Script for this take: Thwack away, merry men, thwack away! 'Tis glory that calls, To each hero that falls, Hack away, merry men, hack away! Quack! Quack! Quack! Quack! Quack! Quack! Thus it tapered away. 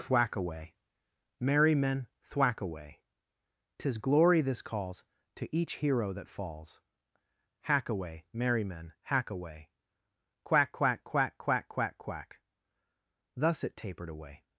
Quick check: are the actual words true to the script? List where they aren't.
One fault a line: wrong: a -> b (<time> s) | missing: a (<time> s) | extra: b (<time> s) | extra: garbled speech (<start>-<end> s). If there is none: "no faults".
wrong: that -> this (4.4 s)